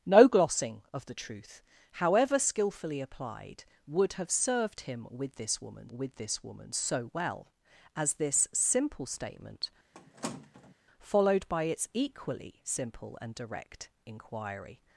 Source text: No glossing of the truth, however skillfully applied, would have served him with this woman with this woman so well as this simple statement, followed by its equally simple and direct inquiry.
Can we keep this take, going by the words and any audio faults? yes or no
no